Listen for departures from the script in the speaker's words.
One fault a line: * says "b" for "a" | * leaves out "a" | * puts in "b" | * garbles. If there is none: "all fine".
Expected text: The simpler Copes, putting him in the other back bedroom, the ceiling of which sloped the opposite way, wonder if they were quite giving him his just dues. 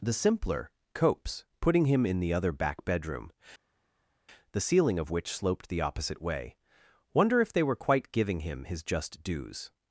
all fine